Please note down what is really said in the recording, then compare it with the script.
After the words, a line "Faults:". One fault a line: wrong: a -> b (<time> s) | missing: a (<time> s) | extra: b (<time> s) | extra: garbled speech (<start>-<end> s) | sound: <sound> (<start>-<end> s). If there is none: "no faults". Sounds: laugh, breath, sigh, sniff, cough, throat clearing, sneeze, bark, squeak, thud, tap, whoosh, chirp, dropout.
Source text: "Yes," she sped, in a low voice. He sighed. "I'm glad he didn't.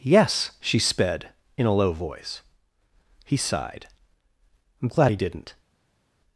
"Yes," she sped, in a low voice. He sighed. "I'm glad he didn't.
Faults:
no faults